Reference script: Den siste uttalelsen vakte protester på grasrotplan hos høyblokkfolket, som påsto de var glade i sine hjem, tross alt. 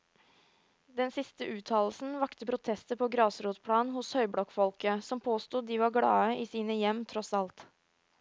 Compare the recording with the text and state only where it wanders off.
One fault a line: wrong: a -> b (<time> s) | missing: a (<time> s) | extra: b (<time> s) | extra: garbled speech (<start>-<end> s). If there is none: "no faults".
no faults